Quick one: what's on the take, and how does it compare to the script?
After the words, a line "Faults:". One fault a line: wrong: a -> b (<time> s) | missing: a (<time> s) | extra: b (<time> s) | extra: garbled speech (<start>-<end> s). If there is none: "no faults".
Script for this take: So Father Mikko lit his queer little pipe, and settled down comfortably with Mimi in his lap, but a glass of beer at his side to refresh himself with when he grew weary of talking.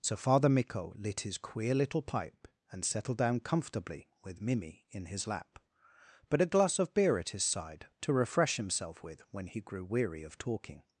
So Father Mikko lit his queer little pipe, and settled down comfortably with Mimi in his lap, but a glass of beer at his side to refresh himself with when he grew weary of talking.
Faults:
no faults